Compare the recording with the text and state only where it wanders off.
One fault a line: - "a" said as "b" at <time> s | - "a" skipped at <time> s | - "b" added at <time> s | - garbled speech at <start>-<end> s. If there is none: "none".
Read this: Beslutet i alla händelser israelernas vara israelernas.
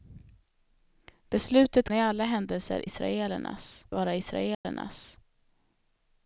none